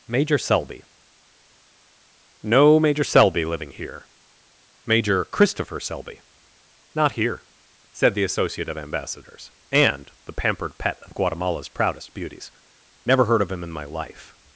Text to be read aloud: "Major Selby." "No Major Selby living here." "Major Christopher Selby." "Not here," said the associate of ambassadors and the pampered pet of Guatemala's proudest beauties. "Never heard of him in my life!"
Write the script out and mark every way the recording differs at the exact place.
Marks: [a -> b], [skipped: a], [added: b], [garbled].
"Major Selby." "No Major Selby living here." "Major Christopher Selby." "Not here," said the associate of ambassadors and the pampered pet of Guatemala's proudest beauties. "Never heard of him in my life!"